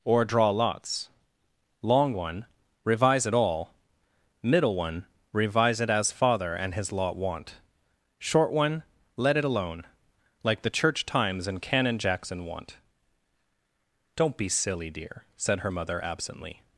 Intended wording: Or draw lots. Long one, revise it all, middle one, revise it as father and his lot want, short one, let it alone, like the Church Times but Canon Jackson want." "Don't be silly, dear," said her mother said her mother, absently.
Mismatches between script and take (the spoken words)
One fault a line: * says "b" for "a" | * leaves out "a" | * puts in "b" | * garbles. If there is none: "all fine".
* says "and" for "but"
* leaves out "said her mother"